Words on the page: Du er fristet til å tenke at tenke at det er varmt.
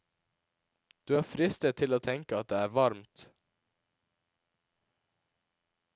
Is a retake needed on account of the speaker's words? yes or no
yes